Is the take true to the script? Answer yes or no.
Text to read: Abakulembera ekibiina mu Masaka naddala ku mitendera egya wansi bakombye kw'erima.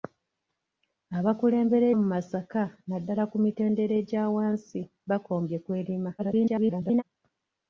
no